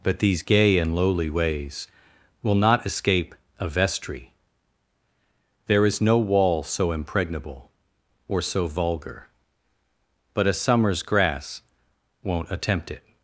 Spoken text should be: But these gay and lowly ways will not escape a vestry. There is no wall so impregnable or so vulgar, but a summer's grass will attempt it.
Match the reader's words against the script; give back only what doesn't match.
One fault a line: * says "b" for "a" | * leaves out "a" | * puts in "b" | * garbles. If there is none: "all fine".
* says "won't" for "will"